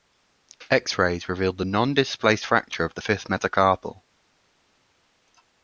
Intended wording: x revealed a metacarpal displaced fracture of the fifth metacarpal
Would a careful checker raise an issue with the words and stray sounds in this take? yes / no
yes